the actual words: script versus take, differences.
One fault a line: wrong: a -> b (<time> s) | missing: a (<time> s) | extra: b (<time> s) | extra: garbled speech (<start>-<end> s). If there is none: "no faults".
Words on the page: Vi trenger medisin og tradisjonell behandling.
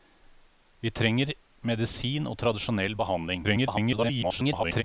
extra: garbled speech (3.4-4.8 s)